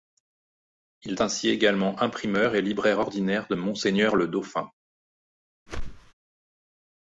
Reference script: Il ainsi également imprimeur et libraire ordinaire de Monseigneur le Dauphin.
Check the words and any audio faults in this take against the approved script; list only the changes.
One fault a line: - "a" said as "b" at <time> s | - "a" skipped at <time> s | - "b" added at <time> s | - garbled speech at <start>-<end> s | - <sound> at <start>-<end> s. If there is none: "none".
- whoosh at 5.7-6.1 s